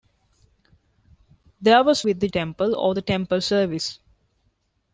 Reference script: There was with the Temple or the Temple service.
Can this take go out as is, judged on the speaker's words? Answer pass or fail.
pass